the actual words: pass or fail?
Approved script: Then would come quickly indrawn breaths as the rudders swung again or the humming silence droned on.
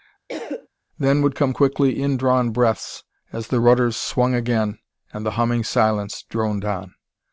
fail